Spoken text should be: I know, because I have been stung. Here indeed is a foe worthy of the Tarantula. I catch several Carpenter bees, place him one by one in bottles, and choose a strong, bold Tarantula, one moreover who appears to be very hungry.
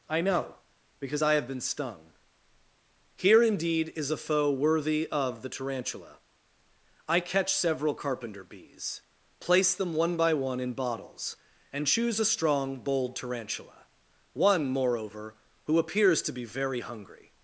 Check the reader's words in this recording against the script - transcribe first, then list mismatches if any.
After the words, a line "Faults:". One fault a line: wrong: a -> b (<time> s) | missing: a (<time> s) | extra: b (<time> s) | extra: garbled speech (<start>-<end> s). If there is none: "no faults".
I know, because I have been stung. Here indeed is a foe worthy of the Tarantula. I catch several Carpenter bees, place them one by one in bottles, and choose a strong, bold Tarantula, one moreover who appears to be very hungry.
Faults:
wrong: him -> them (9.7 s)